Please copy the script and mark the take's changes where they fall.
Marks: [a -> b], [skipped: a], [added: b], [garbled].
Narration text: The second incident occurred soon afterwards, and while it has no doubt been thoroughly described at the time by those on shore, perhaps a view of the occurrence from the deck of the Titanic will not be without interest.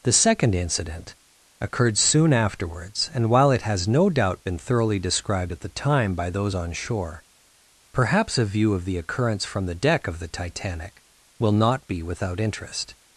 The second incident occurred soon afterwards, and while it has no doubt been thoroughly described at the time by those on shore, perhaps a view of the occurrence from the deck of the Titanic will not be without interest.